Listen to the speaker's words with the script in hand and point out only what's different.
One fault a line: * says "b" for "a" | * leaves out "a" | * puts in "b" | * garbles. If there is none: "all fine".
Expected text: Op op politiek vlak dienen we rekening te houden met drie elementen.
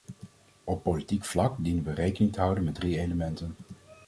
* leaves out "op"